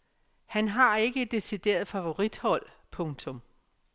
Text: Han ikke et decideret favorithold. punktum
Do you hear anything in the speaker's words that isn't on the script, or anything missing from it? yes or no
yes